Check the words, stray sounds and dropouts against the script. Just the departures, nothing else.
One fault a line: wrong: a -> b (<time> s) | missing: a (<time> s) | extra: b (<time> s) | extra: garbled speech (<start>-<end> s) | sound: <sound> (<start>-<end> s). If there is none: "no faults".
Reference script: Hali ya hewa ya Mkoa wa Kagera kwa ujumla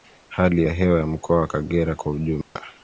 sound: dropout (2.4-2.6 s)